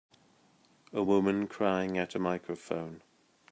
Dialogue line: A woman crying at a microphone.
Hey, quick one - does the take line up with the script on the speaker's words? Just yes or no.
yes